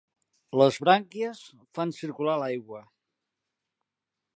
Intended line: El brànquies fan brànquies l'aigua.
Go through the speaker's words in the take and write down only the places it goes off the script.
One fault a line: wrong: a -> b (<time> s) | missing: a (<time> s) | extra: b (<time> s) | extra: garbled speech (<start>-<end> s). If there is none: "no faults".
wrong: El -> Les (0.6 s)
wrong: brànquies -> circular (2.0 s)